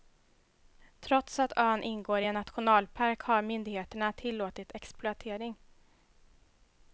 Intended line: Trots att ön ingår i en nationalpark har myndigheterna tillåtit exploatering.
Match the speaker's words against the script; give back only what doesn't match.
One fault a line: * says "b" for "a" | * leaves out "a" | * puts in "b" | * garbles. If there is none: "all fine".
all fine